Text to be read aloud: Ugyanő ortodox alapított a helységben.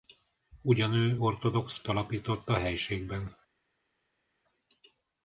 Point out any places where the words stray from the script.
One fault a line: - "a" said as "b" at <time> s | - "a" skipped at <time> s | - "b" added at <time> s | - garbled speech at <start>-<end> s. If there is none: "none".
none